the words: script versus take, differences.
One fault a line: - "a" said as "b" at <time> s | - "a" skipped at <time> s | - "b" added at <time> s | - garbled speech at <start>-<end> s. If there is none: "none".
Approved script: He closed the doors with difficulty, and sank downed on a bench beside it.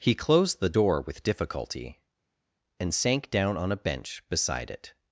- "doors" said as "door" at 0.8 s
- "downed" said as "down" at 3.3 s